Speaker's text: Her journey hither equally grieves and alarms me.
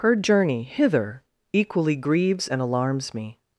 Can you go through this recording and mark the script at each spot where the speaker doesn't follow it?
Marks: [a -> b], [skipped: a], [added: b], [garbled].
Her journey hither equally grieves and alarms me.